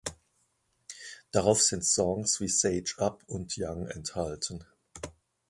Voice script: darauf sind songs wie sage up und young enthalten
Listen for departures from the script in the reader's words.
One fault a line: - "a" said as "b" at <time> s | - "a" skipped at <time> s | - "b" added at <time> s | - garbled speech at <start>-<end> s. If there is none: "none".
none